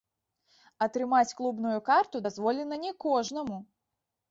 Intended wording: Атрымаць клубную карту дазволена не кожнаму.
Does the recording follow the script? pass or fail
pass